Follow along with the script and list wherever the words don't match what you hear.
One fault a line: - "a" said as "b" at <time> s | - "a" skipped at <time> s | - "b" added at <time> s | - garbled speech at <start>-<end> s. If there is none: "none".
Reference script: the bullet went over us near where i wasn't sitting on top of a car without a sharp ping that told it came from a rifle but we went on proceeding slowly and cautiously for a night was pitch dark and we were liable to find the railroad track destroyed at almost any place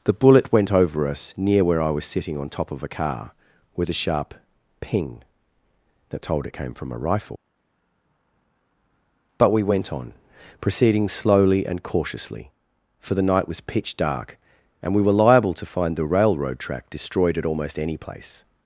- "wasn't" said as "was" at 1.9 s
- "without" said as "with" at 3.8 s
- "a" said as "the" at 13.1 s